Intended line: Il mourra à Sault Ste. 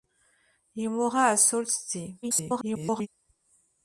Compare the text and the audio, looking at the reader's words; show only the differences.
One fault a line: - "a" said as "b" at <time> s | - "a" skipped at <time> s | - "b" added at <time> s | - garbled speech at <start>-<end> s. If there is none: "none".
- garbled speech at 2.2-3.1 s